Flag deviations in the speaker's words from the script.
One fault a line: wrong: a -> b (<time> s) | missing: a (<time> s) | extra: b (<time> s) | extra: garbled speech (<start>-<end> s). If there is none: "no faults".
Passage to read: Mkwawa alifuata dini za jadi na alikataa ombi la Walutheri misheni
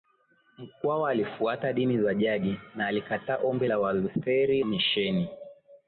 no faults